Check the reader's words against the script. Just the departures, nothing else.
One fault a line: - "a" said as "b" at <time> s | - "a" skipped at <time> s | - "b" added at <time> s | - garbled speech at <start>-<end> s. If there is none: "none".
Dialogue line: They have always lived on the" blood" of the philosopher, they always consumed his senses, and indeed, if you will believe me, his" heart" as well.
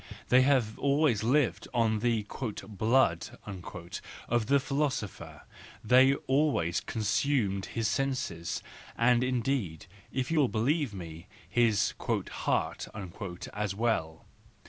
none